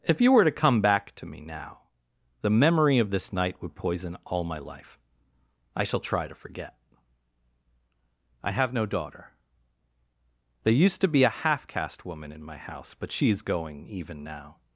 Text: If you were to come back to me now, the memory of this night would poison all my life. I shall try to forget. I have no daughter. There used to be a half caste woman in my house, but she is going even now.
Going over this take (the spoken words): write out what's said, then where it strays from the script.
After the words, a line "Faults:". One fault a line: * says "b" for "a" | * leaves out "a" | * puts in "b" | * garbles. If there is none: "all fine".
If you were to come back to me now, the memory of this night would poison all my life. I shall try to forget. I have no daughter. There used to be a half caste woman in my house, but she is going even now.
Faults:
all fine